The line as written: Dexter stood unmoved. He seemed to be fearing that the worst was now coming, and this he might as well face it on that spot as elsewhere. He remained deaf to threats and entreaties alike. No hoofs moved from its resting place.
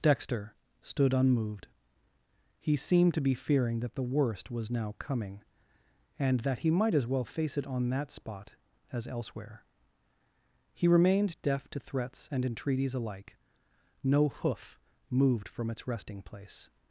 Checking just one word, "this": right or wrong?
wrong